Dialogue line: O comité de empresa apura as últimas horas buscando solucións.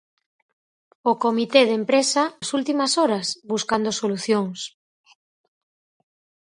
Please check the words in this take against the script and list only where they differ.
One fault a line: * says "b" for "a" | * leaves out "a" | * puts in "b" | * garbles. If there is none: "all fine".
* leaves out "apura"